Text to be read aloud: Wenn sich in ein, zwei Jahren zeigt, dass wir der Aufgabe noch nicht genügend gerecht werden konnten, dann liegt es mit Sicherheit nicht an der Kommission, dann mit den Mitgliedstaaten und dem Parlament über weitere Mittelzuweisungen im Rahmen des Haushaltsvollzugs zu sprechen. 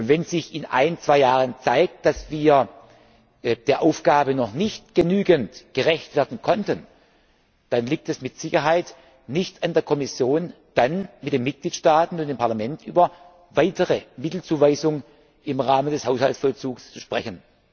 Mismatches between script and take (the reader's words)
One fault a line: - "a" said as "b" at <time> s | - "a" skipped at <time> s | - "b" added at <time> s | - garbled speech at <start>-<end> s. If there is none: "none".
none